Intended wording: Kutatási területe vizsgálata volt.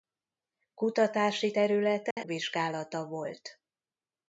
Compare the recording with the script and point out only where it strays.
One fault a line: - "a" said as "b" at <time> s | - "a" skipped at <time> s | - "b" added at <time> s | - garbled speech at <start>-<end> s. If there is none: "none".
none